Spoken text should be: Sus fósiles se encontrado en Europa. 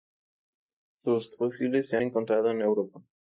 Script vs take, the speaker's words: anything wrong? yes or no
no